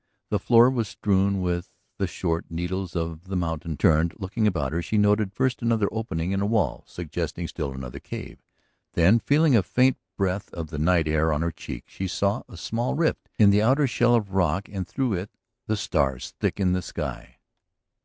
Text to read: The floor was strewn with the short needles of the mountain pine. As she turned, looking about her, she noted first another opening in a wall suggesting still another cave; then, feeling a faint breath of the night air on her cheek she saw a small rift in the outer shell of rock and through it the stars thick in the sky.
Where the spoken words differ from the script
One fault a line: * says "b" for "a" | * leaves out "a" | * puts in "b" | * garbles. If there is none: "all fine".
* leaves out "pine As she"